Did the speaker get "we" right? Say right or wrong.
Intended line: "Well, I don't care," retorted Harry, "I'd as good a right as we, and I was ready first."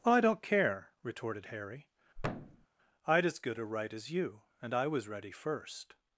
wrong